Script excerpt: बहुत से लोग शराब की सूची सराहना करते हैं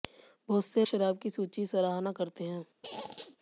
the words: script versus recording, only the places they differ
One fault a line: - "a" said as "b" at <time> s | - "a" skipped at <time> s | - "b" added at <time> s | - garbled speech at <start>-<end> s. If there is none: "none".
- "लोग" skipped at 0.8 s